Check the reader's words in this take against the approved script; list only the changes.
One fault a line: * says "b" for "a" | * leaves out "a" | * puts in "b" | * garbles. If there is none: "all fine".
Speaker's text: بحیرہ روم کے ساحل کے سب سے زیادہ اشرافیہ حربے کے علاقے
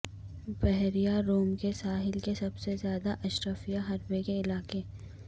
all fine